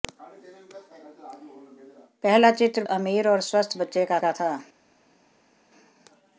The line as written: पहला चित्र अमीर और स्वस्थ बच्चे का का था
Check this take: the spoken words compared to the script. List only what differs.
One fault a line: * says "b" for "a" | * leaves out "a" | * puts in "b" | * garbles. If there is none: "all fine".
all fine